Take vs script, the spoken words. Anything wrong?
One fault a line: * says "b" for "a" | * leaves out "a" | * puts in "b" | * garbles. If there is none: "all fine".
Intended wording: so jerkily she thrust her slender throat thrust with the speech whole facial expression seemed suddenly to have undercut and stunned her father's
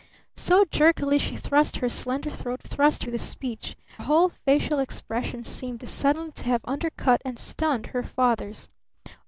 all fine